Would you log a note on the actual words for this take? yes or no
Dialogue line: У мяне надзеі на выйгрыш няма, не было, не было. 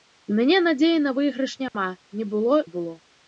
no